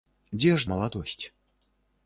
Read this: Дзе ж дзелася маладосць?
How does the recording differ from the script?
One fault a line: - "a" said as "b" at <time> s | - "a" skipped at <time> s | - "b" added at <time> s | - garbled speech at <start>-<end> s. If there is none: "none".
- "дзелася" skipped at 0.7 s